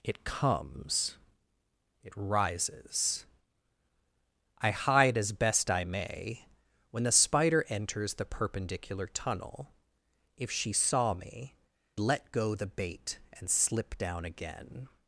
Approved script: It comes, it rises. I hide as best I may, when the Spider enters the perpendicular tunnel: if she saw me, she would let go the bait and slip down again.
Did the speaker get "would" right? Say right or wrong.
wrong